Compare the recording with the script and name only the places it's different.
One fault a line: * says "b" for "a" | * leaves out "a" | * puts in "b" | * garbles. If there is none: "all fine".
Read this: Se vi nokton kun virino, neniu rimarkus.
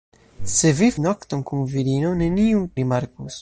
all fine